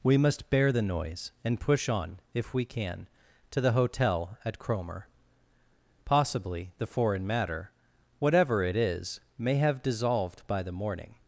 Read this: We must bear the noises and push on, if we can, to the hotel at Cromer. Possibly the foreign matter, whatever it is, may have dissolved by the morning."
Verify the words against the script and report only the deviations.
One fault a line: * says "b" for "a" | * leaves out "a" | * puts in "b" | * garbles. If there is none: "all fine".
* says "noise" for "noises"